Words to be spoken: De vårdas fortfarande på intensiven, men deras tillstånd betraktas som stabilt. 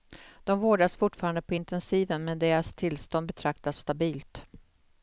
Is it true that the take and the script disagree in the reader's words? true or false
true